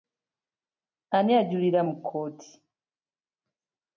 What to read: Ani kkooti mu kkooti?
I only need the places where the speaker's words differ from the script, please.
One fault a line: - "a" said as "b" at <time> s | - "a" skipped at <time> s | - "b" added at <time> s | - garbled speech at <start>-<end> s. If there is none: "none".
- "kkooti" said as "ajulira" at 1.4 s